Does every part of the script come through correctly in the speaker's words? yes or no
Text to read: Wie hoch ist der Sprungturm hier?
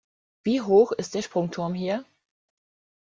yes